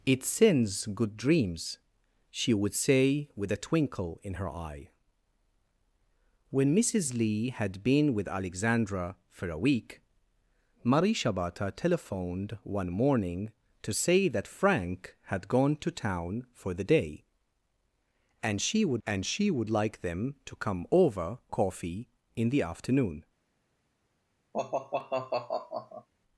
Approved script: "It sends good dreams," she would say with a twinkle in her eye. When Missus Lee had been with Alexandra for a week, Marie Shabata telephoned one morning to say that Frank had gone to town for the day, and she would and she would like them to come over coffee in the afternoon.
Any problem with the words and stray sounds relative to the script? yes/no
yes